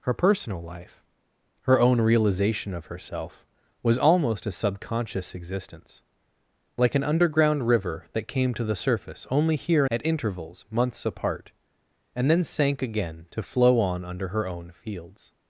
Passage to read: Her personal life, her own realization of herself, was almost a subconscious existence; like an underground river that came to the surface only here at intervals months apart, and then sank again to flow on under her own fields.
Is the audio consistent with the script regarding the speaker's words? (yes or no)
yes